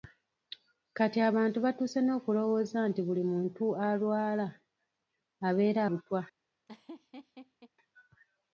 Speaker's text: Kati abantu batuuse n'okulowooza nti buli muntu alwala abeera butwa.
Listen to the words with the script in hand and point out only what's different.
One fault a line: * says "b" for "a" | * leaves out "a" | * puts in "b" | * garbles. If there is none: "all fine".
all fine